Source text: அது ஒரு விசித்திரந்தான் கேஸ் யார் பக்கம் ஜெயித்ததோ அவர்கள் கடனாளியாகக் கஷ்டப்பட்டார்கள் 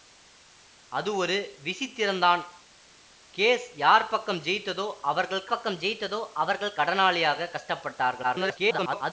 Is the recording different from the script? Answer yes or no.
yes